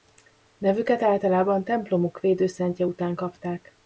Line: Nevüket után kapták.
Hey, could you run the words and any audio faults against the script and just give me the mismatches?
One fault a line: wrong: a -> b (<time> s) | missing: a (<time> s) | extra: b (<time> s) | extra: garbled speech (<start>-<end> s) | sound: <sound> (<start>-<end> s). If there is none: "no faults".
extra: általában templomuk védőszentje (1.0 s)